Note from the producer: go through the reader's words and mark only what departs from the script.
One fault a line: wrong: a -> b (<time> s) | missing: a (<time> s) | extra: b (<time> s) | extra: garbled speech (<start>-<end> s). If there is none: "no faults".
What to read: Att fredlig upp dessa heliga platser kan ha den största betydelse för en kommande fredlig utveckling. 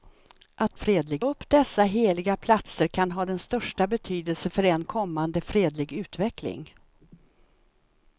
no faults